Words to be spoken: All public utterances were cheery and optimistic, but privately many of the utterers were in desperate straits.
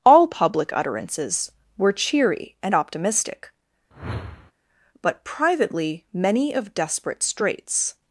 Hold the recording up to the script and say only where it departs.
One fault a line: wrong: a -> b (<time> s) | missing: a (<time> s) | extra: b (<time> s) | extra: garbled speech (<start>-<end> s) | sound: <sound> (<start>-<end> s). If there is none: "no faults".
sound: whoosh (3.9-4.5 s)
missing: the utterers were in (6.7 s)